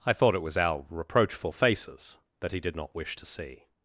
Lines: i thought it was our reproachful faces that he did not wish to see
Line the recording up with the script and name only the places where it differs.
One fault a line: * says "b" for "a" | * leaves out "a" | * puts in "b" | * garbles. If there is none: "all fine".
all fine